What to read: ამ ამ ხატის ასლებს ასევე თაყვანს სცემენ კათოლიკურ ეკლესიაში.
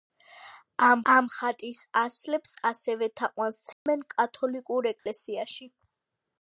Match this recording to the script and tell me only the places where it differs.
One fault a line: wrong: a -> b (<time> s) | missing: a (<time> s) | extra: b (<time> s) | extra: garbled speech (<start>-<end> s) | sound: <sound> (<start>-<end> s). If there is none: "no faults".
sound: dropout (3.7-3.9 s)
sound: dropout (5.0-5.1 s)